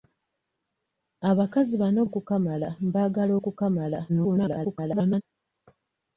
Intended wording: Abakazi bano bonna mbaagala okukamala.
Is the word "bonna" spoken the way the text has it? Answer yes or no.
no